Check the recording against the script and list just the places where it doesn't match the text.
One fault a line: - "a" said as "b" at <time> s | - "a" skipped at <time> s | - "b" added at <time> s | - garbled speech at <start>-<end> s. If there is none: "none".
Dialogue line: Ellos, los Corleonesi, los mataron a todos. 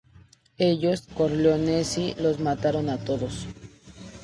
- "los" skipped at 1.1 s